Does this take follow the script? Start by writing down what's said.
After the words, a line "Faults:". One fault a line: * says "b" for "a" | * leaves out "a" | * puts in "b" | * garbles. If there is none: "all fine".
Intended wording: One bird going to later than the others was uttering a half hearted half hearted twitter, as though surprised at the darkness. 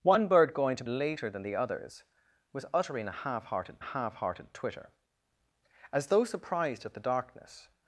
One bird going to later than the others was uttering a half hearted half hearted twitter, as though surprised at the darkness.
Faults:
all fine